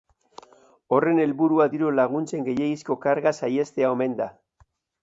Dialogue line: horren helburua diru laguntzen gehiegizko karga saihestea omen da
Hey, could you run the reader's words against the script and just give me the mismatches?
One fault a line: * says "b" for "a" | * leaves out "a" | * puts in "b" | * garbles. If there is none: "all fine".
all fine